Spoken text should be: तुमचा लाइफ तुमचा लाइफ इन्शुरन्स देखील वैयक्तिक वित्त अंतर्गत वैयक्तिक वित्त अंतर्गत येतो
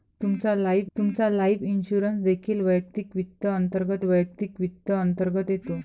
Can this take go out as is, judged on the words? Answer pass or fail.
pass